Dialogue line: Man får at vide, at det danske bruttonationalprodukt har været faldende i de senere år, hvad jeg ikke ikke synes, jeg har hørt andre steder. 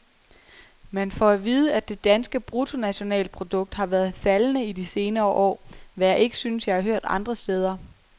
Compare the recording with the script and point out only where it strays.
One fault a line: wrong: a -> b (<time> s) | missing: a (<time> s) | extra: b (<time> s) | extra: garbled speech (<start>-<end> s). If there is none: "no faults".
missing: ikke (6.4 s)